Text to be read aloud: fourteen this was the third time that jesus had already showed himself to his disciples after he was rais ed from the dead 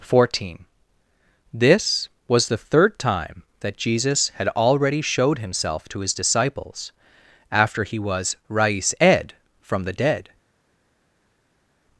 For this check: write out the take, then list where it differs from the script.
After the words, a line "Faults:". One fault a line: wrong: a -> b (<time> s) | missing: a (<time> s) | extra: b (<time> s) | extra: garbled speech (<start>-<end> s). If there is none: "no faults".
fourteen this was the third time that jesus had already showed himself to his disciples after he was rais ed from the dead
Faults:
no faults